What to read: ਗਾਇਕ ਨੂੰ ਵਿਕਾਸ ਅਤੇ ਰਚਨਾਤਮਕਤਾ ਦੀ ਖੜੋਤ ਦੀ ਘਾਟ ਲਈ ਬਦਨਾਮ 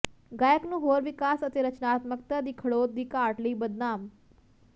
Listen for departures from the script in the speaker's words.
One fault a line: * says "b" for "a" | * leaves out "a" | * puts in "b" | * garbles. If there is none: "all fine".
* puts in "ਹੋਰ"